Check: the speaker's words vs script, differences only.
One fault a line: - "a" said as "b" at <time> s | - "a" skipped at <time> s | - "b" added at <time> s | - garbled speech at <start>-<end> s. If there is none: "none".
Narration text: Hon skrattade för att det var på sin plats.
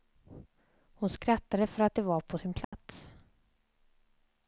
none